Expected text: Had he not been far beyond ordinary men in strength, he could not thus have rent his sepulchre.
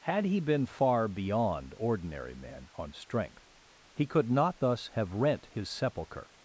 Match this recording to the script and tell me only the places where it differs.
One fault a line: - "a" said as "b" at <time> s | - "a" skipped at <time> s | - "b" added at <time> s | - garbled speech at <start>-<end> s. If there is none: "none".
- "not" skipped at 0.4 s
- "in" said as "on" at 2.7 s